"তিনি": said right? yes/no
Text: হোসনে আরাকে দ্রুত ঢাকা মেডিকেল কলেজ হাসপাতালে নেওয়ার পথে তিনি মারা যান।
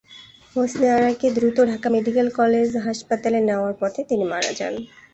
yes